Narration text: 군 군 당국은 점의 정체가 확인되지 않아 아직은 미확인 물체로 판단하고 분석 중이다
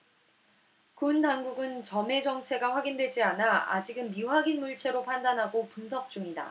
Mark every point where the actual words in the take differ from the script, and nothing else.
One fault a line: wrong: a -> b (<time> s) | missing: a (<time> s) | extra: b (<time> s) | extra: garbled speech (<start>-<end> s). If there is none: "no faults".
missing: 군 (1.2 s)